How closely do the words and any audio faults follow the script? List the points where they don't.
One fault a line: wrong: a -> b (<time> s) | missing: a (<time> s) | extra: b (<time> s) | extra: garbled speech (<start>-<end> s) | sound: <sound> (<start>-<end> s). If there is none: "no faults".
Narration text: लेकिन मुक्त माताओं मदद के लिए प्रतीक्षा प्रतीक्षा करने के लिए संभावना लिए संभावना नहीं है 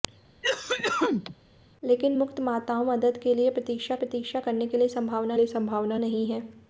sound: cough (0.4-1.3 s)